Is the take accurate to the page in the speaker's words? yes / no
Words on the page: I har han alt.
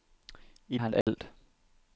yes